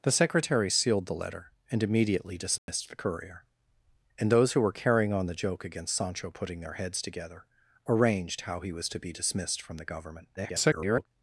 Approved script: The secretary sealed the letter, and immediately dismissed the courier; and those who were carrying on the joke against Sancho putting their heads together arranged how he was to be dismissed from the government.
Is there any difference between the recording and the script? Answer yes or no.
yes